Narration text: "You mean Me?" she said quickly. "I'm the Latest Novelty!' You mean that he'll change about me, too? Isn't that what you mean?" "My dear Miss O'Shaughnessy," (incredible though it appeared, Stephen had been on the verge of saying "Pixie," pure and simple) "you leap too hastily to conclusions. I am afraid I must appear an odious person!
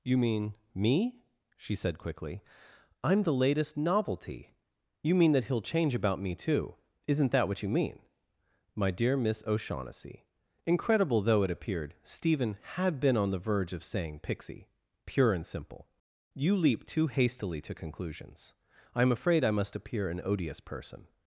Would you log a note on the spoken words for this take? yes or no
no